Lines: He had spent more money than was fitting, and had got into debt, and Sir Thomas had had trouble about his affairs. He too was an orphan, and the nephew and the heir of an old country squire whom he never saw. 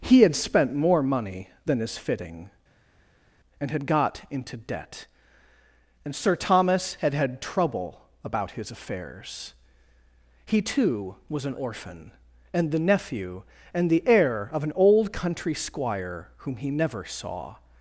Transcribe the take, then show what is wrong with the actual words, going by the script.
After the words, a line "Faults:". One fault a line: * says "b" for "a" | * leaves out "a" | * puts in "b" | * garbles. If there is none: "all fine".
He had spent more money than is fitting, and had got into debt, and Sir Thomas had had trouble about his affairs. He too was an orphan, and the nephew and the heir of an old country squire whom he never saw.
Faults:
* says "is" for "was"